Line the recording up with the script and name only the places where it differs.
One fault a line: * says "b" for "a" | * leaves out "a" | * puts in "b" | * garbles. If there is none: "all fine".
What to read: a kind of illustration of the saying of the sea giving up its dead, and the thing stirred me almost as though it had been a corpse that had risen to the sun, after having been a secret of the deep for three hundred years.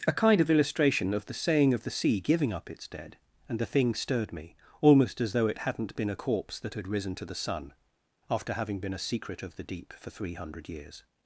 * says "hadn't" for "had"